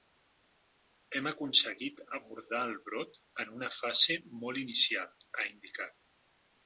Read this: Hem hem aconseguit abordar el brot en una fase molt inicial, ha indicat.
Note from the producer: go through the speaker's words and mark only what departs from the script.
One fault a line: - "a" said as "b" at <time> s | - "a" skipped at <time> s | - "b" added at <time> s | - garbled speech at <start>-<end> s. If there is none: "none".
- "hem" skipped at 1.3 s